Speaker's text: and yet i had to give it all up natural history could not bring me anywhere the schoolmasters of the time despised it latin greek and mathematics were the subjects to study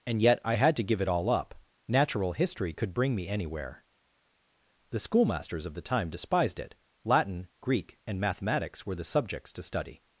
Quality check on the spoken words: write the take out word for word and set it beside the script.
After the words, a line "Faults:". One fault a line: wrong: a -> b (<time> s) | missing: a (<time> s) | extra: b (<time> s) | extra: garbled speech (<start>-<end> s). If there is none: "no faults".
and yet i had to give it all up natural history could bring me anywhere the schoolmasters of the time despised it latin greek and mathematics were the subjects to study
Faults:
missing: not (2.9 s)